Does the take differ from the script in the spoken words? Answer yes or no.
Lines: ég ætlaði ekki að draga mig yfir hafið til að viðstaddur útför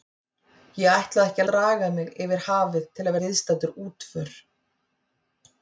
no